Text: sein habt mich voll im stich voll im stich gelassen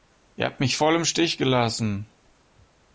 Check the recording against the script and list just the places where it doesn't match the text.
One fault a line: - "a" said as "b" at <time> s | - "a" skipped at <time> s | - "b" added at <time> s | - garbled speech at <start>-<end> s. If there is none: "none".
- "sein" said as "ihr" at 0.3 s
- "voll im stich" skipped at 1.4 s